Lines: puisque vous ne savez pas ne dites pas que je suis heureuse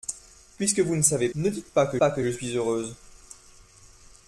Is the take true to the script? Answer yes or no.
no